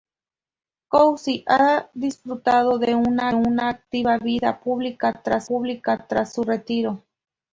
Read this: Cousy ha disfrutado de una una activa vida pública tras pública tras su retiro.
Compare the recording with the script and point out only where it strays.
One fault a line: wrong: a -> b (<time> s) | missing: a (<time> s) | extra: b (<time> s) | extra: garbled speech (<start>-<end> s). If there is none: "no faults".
no faults